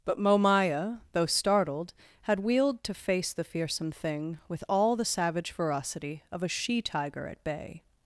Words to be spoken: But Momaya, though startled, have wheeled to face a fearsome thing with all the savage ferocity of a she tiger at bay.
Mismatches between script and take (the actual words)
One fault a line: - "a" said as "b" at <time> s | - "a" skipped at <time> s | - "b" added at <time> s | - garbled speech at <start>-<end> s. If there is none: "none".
- "have" said as "had" at 2.2 s
- "a" said as "the" at 3.3 s